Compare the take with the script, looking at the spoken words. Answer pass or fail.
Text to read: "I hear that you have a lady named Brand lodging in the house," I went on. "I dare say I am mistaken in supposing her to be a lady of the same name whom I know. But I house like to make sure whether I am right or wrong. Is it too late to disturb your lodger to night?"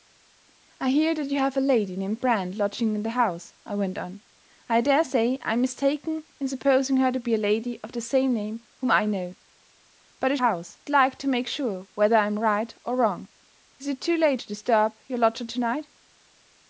pass